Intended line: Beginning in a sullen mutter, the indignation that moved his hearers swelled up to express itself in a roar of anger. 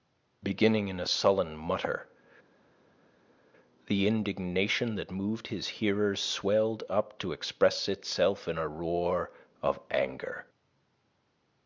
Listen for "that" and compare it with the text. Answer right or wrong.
right